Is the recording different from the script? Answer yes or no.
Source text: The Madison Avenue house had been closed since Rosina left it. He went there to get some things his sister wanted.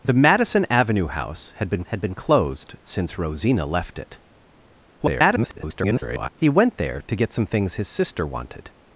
yes